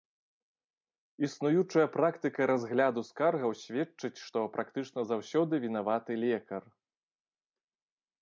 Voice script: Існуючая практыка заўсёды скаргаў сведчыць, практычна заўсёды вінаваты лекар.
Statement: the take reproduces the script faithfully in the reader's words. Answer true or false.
false